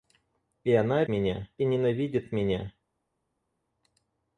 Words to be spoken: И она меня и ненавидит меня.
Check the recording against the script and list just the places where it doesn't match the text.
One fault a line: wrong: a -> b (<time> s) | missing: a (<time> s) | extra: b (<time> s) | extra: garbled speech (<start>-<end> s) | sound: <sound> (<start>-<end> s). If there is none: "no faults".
no faults